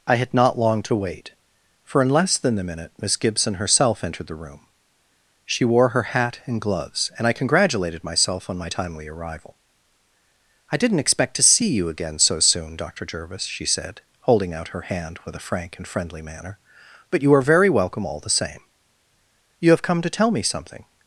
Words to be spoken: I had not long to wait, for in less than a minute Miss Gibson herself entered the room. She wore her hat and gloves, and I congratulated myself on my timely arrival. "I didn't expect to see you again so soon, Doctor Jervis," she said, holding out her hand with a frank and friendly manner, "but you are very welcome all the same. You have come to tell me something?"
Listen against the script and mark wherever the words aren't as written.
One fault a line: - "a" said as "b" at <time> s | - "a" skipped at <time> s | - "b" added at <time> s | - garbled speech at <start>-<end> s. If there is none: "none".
none